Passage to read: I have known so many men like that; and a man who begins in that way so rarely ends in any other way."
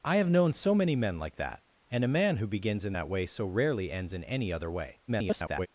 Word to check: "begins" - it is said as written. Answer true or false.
true